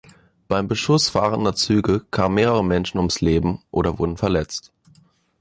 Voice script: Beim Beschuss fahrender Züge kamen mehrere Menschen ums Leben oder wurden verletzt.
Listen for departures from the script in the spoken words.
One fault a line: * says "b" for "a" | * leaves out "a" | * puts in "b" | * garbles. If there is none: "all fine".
all fine